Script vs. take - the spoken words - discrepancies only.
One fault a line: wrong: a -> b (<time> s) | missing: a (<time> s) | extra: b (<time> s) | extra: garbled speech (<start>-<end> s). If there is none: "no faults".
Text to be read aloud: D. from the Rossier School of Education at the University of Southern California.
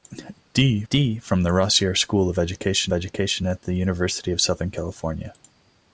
extra: d (0.9 s)
extra: Education (2.9 s)